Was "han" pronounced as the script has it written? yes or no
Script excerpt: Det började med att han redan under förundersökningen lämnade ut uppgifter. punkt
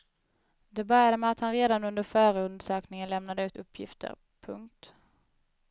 yes